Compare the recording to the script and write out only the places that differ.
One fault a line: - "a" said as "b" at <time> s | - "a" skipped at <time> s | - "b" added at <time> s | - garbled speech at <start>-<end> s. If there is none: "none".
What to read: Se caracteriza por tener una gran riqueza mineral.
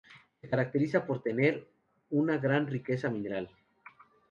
none